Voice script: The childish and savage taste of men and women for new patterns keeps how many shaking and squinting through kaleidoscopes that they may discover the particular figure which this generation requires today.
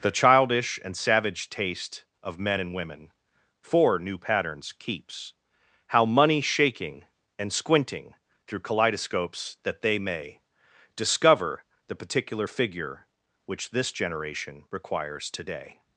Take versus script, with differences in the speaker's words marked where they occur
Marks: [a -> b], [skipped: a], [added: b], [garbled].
The childish and savage taste of men and women for new patterns keeps how [many -> money] shaking and squinting through kaleidoscopes that they may discover the particular figure which this generation requires today.